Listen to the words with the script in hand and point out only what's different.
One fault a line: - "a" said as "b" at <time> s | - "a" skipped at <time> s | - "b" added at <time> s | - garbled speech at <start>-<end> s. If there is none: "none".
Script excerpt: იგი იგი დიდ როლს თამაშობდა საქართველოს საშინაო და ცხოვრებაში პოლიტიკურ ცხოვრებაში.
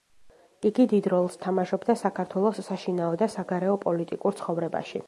- "იგი" skipped at 0.8 s
- "ცხოვრებაში" said as "საგარეო" at 3.4 s